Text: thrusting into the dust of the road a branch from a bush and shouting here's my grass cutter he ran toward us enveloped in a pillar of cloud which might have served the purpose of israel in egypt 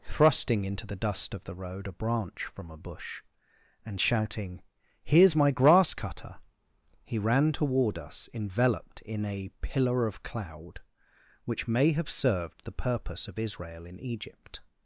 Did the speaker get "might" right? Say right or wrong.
wrong